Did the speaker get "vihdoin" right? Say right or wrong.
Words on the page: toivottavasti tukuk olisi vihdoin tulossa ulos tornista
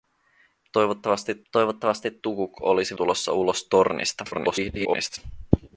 wrong